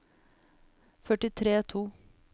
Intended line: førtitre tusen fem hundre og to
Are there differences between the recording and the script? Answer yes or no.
yes